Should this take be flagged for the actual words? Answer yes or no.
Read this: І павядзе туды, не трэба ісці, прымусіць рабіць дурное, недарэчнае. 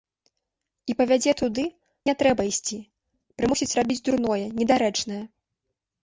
no